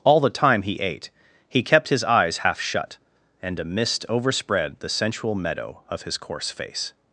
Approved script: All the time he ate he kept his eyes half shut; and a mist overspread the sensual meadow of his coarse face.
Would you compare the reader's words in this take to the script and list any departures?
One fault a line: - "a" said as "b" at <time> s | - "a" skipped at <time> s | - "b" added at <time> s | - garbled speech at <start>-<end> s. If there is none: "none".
none